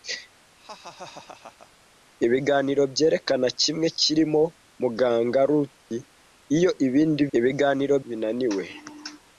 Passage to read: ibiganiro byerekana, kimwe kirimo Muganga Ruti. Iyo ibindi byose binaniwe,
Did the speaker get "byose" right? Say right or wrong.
wrong